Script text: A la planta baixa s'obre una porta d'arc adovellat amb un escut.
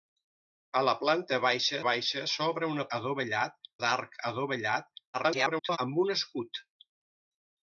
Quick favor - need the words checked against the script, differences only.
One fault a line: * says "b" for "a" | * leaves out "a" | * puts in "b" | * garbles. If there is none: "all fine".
* puts in "baixa"
* says "adovellat" for "porta"
* garbles